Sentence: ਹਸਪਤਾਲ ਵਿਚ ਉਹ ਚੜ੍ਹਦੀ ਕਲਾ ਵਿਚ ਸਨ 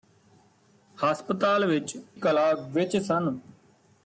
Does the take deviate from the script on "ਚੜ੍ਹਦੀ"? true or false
true